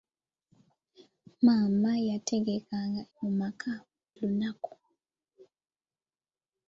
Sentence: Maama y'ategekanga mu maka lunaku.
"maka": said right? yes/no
yes